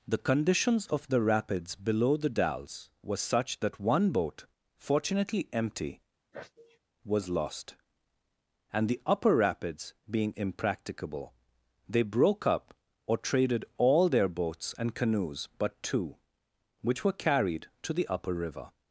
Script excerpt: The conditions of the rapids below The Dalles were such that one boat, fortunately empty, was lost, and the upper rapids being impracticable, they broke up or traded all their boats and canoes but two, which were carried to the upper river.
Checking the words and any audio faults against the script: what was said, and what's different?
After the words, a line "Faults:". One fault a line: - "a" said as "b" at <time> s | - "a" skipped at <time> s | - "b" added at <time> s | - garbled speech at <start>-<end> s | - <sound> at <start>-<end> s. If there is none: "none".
The conditions of the rapids below The Dalles were such that one boat, fortunately empty, was lost, and the upper rapids being impracticable, they broke up or traded all their boats and canoes but two, which were carried to the upper river.
Faults:
- sneeze at 6.3-6.8 s